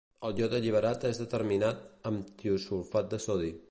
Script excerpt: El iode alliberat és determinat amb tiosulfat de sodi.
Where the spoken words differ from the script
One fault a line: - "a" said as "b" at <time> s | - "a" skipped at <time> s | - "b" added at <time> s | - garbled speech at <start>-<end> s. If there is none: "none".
none